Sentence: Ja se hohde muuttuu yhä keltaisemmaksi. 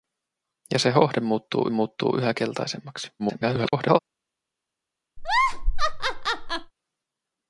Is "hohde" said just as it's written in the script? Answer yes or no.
yes